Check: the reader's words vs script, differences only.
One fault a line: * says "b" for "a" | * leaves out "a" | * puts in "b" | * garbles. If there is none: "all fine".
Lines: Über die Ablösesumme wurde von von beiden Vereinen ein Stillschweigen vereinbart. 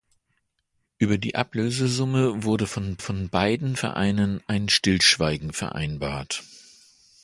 all fine